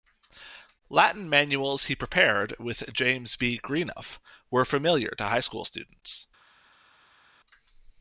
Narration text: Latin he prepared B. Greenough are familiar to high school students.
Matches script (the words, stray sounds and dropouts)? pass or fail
fail